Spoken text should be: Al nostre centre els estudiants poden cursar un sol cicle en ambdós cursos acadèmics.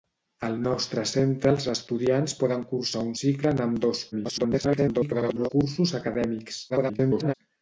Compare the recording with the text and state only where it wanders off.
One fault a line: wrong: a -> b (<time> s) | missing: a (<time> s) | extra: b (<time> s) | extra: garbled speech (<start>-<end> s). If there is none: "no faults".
missing: sol (3.1 s)
extra: garbled speech (4.1-5.5 s)
extra: garbled speech (6.7-7.3 s)